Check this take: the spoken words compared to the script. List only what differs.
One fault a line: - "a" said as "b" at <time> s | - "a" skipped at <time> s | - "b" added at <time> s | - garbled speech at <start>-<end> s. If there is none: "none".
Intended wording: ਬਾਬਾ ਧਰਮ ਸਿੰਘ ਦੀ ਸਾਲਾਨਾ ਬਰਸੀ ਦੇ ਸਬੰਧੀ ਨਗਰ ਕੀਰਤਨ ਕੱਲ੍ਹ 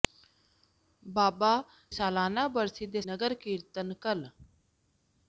- "ਧਰਮ ਸਿੰਘ ਦੀ" skipped at 1.5 s
- "ਸਬੰਧੀ" skipped at 3.0 s